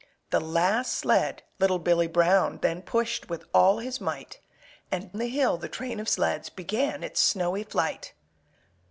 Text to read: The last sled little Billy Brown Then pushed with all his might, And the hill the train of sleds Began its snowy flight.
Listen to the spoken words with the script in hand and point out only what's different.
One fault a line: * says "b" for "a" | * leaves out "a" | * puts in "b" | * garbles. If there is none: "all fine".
all fine